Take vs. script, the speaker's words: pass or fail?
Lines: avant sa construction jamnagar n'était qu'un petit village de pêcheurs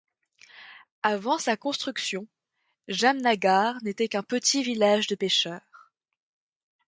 pass